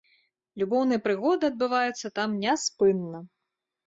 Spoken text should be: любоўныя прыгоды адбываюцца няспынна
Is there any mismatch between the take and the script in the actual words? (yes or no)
yes